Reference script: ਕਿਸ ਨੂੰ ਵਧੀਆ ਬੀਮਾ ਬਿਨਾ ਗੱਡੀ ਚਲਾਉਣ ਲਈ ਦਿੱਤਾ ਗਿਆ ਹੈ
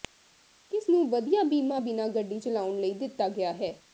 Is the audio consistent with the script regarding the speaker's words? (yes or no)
yes